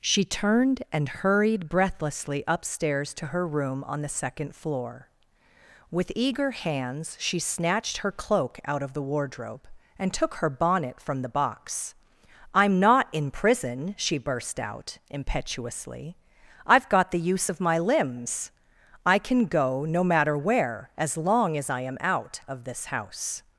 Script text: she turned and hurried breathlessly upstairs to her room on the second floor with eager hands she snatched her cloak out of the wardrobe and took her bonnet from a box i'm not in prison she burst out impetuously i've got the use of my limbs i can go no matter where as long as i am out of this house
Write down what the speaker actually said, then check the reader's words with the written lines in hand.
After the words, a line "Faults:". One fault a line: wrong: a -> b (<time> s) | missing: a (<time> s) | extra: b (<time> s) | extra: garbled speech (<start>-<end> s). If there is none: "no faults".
she turned and hurried breathlessly upstairs to her room on the second floor with eager hands she snatched her cloak out of the wardrobe and took her bonnet from the box i'm not in prison she burst out impetuously i've got the use of my limbs i can go no matter where as long as i am out of this house
Faults:
wrong: a -> the (11.2 s)